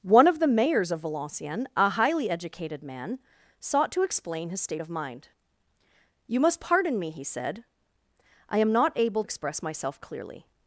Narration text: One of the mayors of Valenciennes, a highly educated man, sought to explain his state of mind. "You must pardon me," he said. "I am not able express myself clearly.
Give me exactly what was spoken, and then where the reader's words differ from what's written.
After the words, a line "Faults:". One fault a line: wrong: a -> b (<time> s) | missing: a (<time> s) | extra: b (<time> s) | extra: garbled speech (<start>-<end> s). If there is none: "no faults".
One of the mayors of Valenciennes, a highly educated man, sought to explain his state of mind. "You must pardon me," he said. "I am not able express myself clearly.
Faults:
no faults